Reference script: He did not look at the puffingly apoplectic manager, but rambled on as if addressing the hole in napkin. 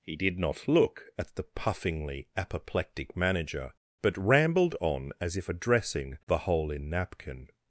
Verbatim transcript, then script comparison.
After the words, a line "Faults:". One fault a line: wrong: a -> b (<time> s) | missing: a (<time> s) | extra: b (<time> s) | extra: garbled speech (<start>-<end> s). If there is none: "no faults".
He did not look at the puffingly apoplectic manager, but rambled on as if addressing the hole in napkin.
Faults:
no faults